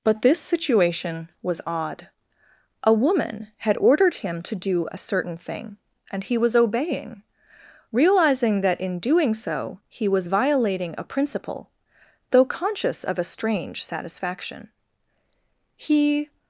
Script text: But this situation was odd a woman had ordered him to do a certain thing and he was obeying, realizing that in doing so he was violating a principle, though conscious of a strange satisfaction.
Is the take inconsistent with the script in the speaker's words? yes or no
yes